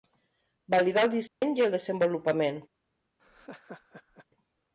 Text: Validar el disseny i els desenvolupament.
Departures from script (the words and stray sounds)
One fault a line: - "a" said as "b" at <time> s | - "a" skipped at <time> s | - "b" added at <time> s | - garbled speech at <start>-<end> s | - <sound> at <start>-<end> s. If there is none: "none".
- dropout at 1.3-1.4 s
- "els" said as "el" at 1.7 s
- laugh at 3.2-4.3 s